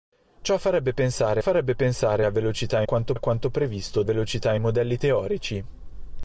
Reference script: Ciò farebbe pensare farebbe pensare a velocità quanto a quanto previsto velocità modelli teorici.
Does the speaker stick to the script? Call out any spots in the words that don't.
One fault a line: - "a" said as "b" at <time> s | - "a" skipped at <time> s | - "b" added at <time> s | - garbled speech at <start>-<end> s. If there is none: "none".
none